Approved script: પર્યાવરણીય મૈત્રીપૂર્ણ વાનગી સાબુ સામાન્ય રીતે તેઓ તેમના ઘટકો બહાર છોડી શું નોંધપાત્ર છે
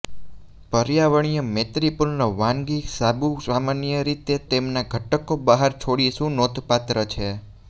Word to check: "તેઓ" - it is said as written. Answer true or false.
false